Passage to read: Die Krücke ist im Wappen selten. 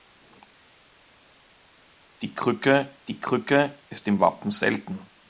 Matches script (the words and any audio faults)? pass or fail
fail